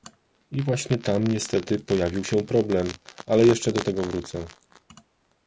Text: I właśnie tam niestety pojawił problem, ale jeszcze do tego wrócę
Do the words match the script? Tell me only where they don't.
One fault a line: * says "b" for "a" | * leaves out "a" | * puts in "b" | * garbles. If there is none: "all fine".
* puts in "się"